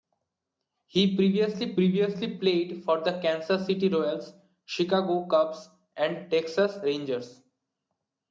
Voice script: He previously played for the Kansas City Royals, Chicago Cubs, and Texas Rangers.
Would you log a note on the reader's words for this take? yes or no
yes